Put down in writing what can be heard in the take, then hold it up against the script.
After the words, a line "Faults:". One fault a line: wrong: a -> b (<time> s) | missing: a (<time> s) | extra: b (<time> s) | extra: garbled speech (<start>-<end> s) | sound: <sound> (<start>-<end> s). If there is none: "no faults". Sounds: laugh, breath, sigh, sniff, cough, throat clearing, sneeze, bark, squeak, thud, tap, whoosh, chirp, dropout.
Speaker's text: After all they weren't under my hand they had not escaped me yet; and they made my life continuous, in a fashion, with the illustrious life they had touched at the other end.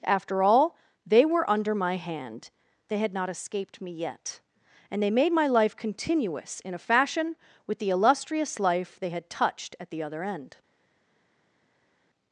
After all they were under my hand they had not escaped me yet; and they made my life continuous, in a fashion, with the illustrious life they had touched at the other end.
Faults:
wrong: weren't -> were (1.2 s)